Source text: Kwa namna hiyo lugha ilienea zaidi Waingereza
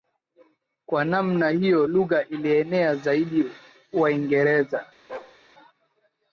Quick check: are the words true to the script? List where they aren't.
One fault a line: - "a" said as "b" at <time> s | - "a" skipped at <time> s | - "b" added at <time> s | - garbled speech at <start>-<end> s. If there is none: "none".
none